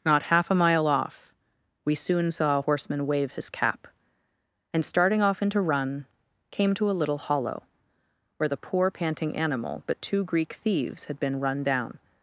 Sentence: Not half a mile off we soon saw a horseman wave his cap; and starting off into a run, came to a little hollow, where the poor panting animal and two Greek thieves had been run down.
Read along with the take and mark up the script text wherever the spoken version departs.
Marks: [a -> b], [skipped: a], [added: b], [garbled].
Not half a mile off we soon saw a horseman wave his cap; and starting off into [skipped: a] run, came to a little hollow, where the poor panting animal [and -> but] two Greek thieves had been run down.